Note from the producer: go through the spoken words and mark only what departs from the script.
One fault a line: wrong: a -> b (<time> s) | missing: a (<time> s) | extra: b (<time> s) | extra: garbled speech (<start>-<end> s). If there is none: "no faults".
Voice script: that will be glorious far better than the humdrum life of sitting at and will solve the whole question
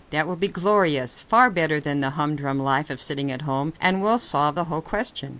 extra: home (3.4 s)